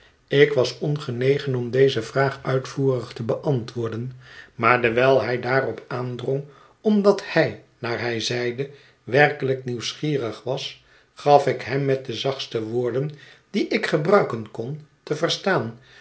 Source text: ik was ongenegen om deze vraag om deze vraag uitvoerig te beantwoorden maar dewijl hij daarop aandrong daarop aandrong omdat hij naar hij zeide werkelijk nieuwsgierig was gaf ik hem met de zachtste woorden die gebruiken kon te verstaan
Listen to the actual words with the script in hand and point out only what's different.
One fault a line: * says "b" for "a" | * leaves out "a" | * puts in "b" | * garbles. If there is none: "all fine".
* leaves out "om deze vraag"
* leaves out "daarop aandrong"
* puts in "ik"